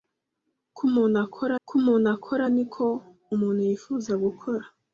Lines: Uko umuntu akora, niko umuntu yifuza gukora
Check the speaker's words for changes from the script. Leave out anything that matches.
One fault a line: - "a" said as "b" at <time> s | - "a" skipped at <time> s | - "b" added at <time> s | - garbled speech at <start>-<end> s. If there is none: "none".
- "uko umuntu akora" added at 1.6 s